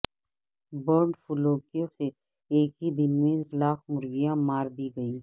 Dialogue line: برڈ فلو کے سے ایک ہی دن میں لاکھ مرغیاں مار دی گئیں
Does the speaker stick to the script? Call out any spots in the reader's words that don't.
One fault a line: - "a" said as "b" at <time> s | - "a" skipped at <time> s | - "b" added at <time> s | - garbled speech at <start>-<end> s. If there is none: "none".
none